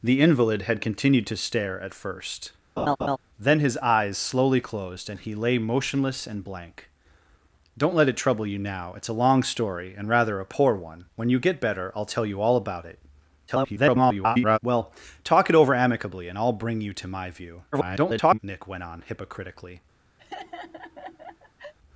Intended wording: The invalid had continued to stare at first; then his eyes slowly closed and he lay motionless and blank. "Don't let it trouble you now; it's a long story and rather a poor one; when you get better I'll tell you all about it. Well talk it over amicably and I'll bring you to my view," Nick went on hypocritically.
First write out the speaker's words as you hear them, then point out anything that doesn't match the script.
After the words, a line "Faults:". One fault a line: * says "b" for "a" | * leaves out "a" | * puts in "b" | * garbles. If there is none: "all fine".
The invalid had continued to stare at first; then his eyes slowly closed and he lay motionless and blank. "Don't let it trouble you now; it's a long story and rather a poor one; when you get better I'll tell you all about it. [garbled] Well talk it over amicably and I'll bring you to my view," [garbled] Nick went on hypocritically.
Faults:
* garbles
* garbles